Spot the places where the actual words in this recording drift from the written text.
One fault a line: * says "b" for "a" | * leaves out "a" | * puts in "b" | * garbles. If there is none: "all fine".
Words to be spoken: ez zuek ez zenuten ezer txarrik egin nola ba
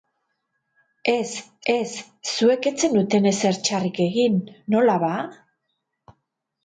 * puts in "ez"